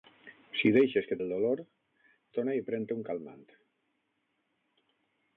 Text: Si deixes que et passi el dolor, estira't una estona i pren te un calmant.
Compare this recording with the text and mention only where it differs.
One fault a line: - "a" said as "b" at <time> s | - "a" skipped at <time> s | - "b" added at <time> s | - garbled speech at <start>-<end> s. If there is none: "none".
- "et passi" skipped at 1.2 s
- "estira't una" skipped at 1.6 s